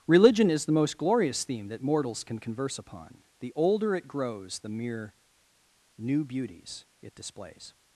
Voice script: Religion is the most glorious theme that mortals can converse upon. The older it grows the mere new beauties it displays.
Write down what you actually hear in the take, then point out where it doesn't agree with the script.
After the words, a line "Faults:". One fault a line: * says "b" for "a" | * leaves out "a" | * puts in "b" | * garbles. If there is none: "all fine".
Religion is the most glorious theme that mortals can converse upon. The older it grows the mere new beauties it displays.
Faults:
all fine